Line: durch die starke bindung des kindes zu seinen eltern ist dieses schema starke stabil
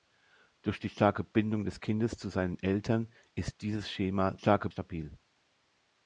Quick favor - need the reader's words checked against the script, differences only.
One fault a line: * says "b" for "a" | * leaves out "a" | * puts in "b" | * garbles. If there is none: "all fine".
all fine